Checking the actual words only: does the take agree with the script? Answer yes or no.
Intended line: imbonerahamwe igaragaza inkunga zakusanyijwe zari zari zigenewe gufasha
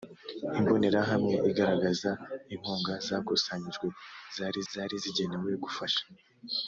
yes